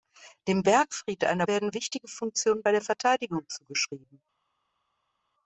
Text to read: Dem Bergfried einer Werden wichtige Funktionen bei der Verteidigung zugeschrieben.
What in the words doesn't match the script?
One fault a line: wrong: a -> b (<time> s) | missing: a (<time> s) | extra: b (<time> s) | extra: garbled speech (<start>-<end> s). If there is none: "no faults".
no faults